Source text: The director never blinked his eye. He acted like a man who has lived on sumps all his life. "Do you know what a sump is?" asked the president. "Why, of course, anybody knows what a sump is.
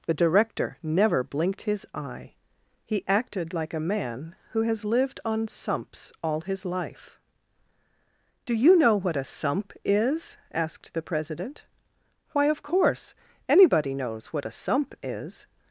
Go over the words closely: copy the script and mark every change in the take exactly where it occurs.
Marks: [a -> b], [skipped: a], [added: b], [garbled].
The director never blinked his eye. He acted like a man who has lived on sumps all his life. "Do you know what a sump is?" asked the president. "Why, of course, anybody knows what a sump is.